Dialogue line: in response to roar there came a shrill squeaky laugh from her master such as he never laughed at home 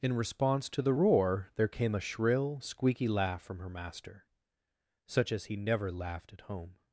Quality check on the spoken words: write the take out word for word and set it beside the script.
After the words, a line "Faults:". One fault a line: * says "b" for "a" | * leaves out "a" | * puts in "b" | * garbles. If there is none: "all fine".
in response to the roar there came a shrill squeaky laugh from her master such as he never laughed at home
Faults:
* puts in "the"